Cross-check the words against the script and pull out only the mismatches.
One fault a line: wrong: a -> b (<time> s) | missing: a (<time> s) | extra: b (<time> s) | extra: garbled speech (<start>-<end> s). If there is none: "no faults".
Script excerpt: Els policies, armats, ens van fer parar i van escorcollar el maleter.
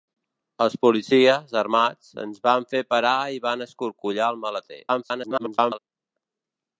extra: garbled speech (4.9-5.8 s)